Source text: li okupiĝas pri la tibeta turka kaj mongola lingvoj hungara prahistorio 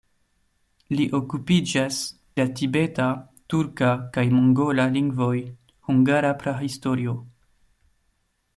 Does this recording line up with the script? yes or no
no